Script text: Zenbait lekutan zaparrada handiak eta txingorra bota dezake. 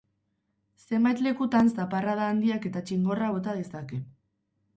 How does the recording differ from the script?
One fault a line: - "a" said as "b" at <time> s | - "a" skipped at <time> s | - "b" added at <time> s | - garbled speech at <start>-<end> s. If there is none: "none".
none